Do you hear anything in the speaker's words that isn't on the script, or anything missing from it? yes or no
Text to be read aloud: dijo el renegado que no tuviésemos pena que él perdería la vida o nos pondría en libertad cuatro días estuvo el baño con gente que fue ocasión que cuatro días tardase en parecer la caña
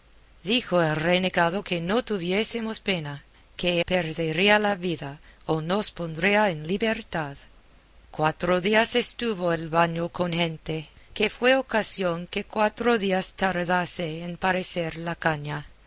yes